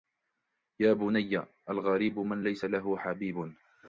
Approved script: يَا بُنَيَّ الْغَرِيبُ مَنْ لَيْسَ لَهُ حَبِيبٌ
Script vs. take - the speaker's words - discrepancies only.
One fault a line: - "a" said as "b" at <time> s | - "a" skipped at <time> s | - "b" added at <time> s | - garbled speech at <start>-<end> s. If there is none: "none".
none